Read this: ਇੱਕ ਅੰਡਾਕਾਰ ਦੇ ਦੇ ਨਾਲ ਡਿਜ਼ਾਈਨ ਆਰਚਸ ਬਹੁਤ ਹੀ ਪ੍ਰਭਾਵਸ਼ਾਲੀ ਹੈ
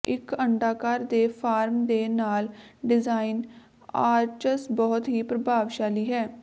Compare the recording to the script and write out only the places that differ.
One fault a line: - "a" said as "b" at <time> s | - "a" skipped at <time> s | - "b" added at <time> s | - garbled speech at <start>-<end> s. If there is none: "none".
- "ਫਾਰਮ" added at 1.3 s